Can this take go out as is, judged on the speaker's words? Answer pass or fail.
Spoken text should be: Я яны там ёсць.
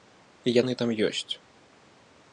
pass